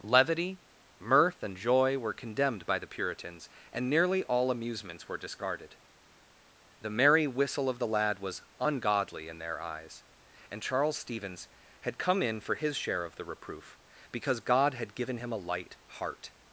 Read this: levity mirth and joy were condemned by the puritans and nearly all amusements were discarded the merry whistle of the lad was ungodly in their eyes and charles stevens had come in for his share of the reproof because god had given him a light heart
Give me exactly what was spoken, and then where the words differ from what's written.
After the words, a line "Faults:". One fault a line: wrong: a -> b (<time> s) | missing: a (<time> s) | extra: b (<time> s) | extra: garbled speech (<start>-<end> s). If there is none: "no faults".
levity mirth and joy were condemned by the puritans and nearly all amusements were discarded the merry whistle of the lad was ungodly in their eyes and charles stevens had come in for his share of the reproof because god had given him a light heart
Faults:
no faults